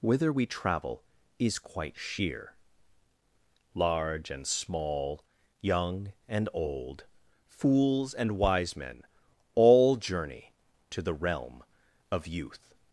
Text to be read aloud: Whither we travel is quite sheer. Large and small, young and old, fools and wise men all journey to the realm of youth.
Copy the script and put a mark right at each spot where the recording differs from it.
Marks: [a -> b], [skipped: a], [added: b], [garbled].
Whither we travel is quite sheer. Large and small, young and old, fools and wise men all journey to the realm of youth.